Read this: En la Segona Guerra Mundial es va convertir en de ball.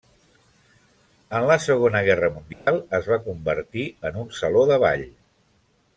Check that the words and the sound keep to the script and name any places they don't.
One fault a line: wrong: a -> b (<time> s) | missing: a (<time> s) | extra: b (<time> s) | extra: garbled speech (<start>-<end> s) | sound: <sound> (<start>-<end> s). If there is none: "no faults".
sound: dropout (2.5-2.7 s)
extra: un saló (4.2 s)